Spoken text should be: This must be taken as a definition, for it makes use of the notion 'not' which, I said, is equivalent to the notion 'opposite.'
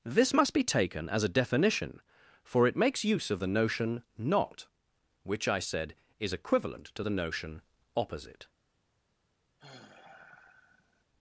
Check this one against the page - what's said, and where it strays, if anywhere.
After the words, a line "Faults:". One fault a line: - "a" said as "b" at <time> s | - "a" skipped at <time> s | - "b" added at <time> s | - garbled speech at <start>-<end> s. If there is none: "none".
This must be taken as a definition, for it makes use of the notion 'not' which, I said, is equivalent to the notion 'opposite.'
Faults:
none